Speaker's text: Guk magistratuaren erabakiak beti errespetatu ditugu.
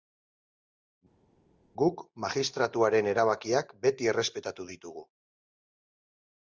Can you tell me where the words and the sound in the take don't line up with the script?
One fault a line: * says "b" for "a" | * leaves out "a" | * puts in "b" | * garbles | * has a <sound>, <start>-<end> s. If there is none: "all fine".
all fine